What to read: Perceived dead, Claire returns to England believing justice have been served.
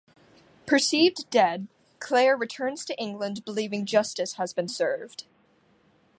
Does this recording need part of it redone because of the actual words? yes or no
yes